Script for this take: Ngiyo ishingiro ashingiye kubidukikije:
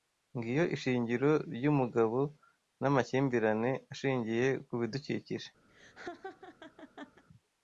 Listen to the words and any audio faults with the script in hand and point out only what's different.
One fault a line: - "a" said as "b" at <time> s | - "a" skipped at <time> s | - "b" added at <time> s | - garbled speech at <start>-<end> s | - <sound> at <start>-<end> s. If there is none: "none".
- "ryumugabo namakimbirane" added at 1.6 s
- laugh at 5.7-7.2 s